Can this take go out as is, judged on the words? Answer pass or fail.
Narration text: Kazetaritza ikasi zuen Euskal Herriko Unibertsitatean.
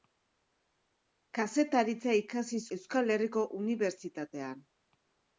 fail